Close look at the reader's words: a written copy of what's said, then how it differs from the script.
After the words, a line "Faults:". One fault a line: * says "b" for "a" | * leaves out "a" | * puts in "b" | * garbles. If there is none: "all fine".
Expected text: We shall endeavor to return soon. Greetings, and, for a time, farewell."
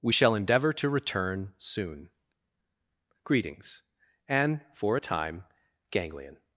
We shall endeavor to return soon. Greetings, and, for a time, ganglion."
Faults:
* says "ganglion" for "farewell"